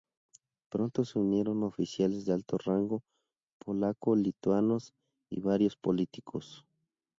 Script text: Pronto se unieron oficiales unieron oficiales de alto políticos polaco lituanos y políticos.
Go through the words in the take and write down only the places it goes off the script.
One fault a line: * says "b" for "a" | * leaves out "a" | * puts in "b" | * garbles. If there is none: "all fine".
* leaves out "unieron oficiales"
* says "rango" for "políticos"
* puts in "varios"